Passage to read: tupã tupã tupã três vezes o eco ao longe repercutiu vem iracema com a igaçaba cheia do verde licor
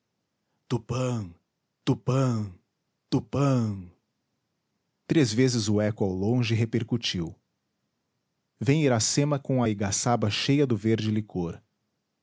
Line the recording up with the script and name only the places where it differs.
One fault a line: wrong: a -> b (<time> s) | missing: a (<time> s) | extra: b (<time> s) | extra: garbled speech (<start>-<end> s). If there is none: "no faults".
no faults